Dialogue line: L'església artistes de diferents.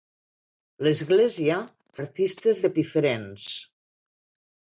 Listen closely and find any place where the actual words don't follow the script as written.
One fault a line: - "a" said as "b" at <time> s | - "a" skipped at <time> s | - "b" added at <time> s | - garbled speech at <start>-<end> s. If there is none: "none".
none